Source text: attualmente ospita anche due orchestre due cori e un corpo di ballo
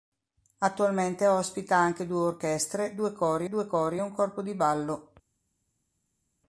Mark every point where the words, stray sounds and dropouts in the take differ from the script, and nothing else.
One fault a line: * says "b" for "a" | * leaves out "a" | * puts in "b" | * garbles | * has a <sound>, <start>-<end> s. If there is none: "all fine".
* puts in "due cori"